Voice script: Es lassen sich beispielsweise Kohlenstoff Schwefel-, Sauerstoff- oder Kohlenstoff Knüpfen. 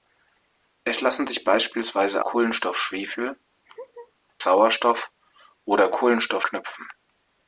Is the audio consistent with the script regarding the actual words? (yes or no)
yes